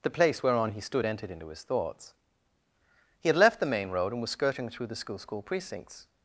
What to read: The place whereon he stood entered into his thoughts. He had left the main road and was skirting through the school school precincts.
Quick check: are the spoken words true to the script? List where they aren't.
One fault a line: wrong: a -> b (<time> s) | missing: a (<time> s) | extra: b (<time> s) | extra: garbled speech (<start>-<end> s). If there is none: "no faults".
no faults